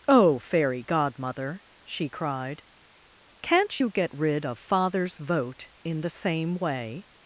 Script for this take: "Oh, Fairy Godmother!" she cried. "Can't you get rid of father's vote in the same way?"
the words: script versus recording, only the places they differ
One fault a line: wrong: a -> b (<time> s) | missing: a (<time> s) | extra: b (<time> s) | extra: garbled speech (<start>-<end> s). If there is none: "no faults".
no faults